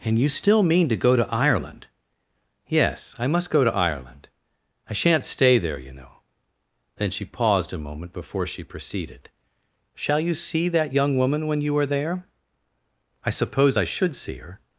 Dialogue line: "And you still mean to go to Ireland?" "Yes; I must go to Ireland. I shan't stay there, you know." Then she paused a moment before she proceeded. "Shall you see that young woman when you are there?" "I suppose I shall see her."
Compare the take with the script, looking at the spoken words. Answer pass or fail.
fail